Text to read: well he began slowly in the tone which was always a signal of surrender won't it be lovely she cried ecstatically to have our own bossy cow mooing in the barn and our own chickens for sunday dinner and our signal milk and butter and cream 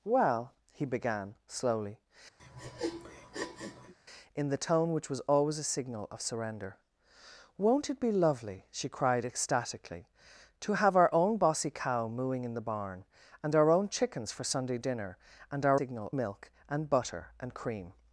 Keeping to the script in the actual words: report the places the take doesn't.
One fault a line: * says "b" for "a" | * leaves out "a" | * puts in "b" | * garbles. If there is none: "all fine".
all fine